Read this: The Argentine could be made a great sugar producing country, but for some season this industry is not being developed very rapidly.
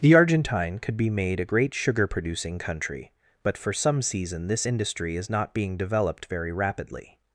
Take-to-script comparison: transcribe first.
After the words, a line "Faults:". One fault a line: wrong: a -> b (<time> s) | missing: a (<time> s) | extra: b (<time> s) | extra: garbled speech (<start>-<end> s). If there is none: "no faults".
The Argentine could be made a great sugar producing country, but for some season this industry is not being developed very rapidly.
Faults:
no faults